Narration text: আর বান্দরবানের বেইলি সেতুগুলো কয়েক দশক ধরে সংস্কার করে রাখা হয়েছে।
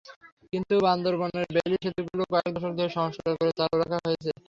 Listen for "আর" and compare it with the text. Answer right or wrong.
wrong